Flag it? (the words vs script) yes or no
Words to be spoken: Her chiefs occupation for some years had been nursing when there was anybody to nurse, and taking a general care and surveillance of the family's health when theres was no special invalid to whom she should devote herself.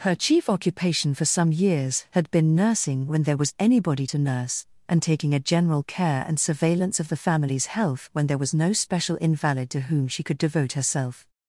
yes